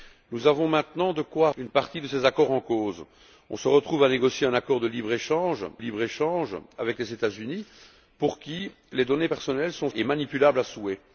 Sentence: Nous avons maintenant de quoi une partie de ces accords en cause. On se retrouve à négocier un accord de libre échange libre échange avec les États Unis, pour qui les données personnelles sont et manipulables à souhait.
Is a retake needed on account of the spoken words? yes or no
no